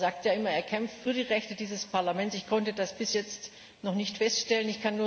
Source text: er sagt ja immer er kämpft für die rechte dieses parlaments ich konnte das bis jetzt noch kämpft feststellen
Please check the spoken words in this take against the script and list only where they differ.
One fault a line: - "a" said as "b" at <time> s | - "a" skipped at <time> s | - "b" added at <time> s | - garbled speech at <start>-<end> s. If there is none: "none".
- "kämpft" said as "nicht" at 3.9 s